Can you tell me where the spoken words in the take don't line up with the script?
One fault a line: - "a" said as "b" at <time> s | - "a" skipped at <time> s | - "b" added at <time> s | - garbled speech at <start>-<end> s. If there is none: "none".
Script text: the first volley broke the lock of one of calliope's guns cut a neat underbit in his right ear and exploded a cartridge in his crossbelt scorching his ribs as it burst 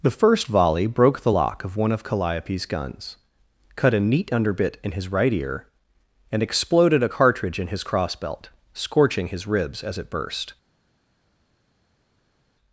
none